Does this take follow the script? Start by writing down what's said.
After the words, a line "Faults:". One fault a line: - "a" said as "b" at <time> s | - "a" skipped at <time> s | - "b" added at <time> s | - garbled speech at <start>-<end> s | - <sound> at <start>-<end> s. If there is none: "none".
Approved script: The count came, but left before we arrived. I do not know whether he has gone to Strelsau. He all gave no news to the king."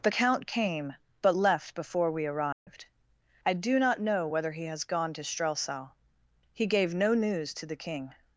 The count came, but left before we arrived. I do not know whether he has gone to Strelsau. He gave no news to the king."
Faults:
- dropout at 2.5-2.7 s
- "all" skipped at 6.7 s